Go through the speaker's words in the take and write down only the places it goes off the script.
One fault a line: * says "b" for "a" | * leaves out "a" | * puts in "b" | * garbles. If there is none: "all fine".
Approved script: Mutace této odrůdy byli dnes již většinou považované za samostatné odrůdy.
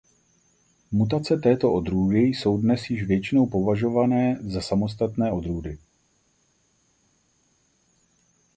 * says "jsou" for "byli"